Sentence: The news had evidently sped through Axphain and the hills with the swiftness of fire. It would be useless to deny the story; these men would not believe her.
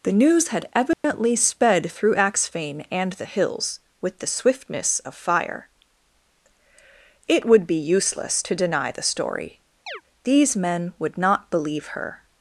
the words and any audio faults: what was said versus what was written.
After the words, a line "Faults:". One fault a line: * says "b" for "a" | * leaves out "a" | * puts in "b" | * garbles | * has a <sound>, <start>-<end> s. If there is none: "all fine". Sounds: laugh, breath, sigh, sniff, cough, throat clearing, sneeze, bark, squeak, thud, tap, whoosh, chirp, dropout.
The news had evidently sped through Axphain and the hills with the swiftness of fire. It would be useless to deny the story; these men would not believe her.
Faults:
* has a dropout, 0.9-1.0 s
* has a chirp, 9.9-10.0 s